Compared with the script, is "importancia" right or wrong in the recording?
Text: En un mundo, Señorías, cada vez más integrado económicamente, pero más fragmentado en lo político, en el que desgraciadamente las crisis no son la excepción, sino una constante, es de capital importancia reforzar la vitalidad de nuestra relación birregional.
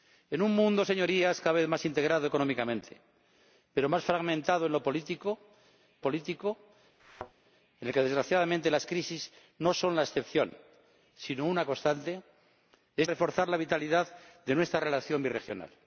wrong